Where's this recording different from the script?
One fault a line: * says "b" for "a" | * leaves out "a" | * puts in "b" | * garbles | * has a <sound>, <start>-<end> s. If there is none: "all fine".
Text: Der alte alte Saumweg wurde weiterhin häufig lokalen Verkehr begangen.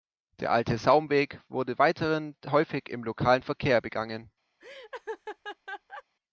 * leaves out "alte"
* puts in "im"
* has a laugh, 4.6-6.0 s